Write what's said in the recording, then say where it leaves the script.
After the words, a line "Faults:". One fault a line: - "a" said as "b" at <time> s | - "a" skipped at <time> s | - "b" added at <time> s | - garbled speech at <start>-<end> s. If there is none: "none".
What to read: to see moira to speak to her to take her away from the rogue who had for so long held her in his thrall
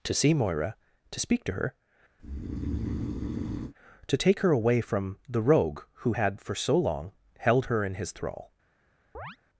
to see moira to speak to her to take her away from the rogue who had for so long held her in his thrall
Faults:
none